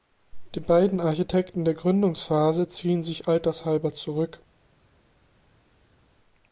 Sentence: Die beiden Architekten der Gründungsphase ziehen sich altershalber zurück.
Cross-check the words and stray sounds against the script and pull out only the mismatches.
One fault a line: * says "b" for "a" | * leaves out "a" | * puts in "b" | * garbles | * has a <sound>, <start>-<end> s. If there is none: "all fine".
all fine